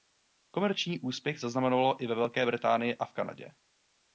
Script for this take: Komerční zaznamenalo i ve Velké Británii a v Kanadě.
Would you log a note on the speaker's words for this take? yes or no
yes